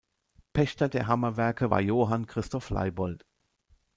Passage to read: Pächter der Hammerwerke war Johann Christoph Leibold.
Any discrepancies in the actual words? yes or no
no